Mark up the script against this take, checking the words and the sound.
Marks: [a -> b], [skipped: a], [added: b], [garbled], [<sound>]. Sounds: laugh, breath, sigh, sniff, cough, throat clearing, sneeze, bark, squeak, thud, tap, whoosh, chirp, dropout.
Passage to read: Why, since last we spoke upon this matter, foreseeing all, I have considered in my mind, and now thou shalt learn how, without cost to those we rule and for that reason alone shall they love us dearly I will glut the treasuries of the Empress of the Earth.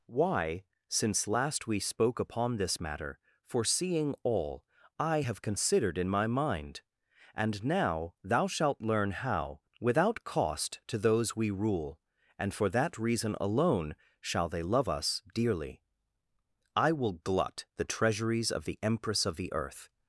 Why, since last we spoke upon this matter, foreseeing all, I have considered in my mind, and now thou shalt learn how, without cost to those we rule and for that reason alone shall they love us dearly I will glut the treasuries of the Empress of the Earth.